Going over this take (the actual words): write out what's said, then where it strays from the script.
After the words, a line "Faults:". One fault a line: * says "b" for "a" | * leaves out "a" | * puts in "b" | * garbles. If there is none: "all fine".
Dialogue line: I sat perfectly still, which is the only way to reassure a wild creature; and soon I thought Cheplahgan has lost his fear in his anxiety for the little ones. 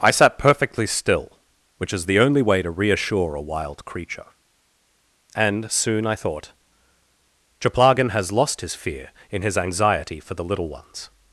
I sat perfectly still, which is the only way to reassure a wild creature; and soon I thought Cheplahgan has lost his fear in his anxiety for the little ones.
Faults:
all fine